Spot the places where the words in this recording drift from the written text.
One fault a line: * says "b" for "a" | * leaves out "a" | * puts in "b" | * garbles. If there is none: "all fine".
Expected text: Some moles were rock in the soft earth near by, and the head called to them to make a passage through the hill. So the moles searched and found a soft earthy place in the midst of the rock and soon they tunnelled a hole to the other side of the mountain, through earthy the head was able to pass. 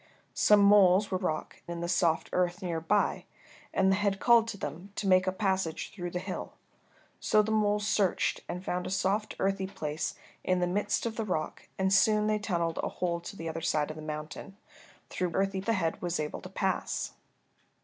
all fine